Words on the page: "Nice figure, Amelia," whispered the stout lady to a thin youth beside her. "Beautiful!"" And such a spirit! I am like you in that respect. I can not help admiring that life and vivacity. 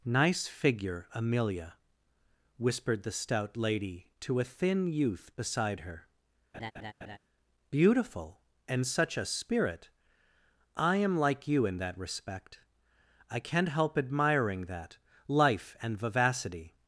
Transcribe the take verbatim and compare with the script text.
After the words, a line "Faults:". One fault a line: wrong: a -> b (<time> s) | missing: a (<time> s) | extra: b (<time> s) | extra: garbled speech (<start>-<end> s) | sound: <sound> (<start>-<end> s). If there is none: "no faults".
"Nice figure, Amelia," whispered the stout lady to a thin youth beside her. "Beautiful!"" And such a spirit! I am like you in that respect. I can not help admiring that life and vivacity.
Faults:
sound: laugh (6.5-7.2 s)